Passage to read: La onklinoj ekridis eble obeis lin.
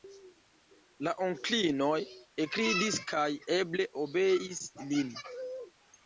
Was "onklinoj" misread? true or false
false